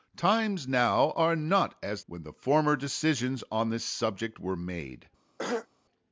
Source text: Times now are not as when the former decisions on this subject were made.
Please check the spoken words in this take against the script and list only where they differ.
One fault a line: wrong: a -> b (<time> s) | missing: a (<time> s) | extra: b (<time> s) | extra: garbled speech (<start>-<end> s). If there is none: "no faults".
no faults